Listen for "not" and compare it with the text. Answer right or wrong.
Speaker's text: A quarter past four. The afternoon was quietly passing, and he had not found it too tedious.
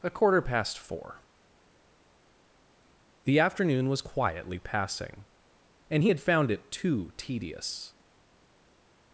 wrong